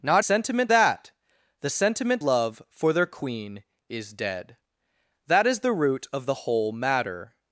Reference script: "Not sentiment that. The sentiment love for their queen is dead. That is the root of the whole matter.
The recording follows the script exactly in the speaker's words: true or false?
true